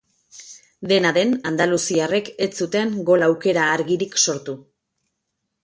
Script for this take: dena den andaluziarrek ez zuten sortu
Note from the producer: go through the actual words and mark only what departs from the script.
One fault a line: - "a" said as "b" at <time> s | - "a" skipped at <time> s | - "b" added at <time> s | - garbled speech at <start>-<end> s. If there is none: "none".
- "gol aukera argirik" added at 3.1 s